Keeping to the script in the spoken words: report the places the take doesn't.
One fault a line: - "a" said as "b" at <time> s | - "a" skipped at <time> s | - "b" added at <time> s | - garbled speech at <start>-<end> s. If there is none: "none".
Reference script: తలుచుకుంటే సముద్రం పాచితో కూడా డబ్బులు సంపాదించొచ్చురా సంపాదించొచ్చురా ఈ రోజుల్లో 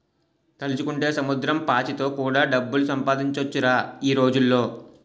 - "సంపాదించొచ్చురా" skipped at 3.8 s